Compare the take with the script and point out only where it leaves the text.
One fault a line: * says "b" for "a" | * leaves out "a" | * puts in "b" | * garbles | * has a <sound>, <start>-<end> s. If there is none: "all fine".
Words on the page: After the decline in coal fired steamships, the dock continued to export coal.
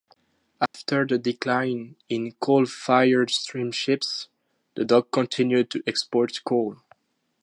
* has a dropout, 0.7-0.7 s